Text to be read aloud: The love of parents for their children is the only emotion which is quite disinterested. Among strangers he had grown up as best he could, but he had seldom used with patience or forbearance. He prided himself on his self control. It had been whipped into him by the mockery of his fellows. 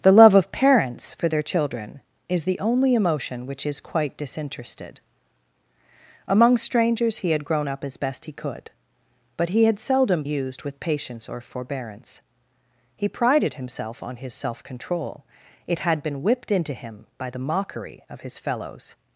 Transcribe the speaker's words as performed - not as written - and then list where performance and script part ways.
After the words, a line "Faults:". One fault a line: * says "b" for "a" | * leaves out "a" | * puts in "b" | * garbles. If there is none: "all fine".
The love of parents for their children is the only emotion which is quite disinterested. Among strangers he had grown up as best he could, but he had seldom used with patience or forbearance. He prided himself on his self control. It had been whipped into him by the mockery of his fellows.
Faults:
all fine